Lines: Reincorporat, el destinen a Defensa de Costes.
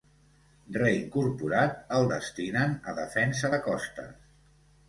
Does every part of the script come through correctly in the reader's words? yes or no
yes